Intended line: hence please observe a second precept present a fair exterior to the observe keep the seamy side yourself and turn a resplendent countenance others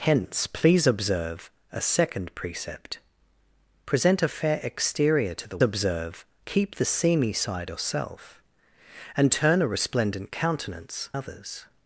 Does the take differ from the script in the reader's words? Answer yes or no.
no